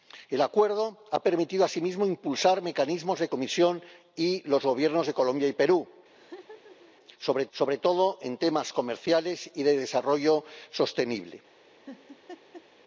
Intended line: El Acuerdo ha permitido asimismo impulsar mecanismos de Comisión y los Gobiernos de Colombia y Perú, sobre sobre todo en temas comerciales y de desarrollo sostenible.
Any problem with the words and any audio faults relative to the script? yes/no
yes